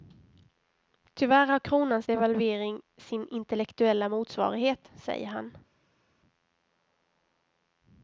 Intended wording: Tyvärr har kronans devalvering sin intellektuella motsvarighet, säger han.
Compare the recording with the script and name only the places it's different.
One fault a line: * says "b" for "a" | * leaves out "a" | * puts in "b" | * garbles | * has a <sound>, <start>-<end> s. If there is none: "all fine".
all fine